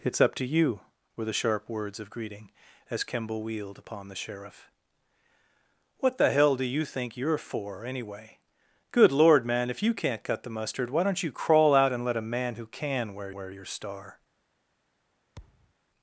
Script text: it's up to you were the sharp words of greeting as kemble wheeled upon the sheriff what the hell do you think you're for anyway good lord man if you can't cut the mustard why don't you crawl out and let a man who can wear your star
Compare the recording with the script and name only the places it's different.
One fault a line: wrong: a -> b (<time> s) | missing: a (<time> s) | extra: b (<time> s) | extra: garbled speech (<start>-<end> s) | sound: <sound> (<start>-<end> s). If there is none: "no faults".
extra: wear (13.3 s)
sound: thud (15.4-15.7 s)